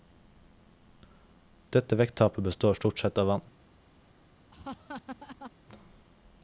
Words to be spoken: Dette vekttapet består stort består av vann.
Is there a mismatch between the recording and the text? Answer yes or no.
yes